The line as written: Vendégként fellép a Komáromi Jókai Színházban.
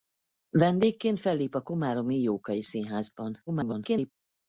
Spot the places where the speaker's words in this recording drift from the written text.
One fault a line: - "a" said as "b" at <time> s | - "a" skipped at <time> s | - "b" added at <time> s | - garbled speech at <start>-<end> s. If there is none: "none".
- garbled speech at 3.5-4.1 s